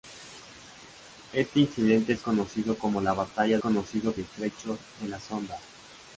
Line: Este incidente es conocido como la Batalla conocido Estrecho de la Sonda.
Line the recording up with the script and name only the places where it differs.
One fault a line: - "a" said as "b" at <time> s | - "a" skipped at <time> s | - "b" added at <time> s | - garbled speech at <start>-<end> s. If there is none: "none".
none